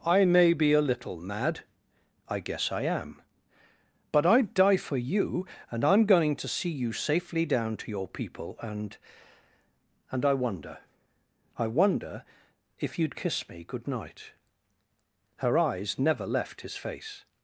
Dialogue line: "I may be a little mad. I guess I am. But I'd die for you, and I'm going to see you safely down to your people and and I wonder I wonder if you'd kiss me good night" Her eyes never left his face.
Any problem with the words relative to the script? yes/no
no